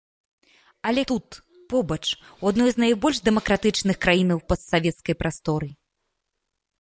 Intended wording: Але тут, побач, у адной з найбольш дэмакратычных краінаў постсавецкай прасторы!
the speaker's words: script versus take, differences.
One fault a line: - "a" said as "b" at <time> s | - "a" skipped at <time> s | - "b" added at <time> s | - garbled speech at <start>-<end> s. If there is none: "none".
none